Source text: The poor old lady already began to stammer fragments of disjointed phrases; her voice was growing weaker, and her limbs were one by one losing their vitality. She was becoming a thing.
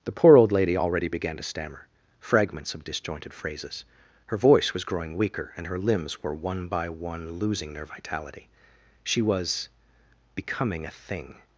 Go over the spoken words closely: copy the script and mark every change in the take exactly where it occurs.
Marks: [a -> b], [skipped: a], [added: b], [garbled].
The poor old lady already began to stammer fragments of disjointed phrases; her voice was growing weaker, and her limbs were one by one losing their vitality. She was becoming a thing.